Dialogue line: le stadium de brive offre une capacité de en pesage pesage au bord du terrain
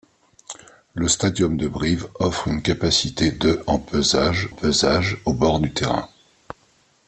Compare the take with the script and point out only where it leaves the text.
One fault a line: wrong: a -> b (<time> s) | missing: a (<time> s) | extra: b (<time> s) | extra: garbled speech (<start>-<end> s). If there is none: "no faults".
no faults